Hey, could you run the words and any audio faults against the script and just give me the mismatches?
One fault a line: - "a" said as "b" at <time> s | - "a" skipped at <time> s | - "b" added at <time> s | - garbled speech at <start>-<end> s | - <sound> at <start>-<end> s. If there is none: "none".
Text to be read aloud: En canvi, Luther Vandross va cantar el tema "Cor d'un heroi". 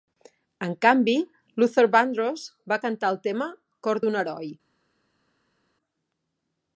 none